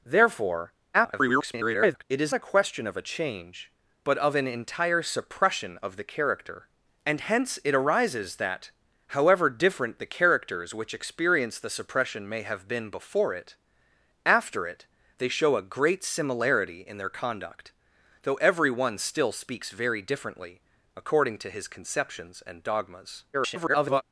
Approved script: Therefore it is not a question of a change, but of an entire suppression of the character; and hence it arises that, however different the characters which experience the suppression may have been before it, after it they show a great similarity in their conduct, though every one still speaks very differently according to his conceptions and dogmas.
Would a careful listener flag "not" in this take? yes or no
yes